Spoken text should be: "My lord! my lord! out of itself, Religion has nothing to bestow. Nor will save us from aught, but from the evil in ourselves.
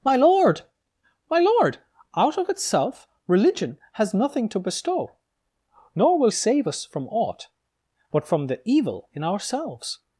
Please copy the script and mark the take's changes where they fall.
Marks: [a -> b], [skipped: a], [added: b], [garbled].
"My lord! my lord! out of itself, Religion has nothing to bestow. Nor will save us from aught, but from the evil in ourselves.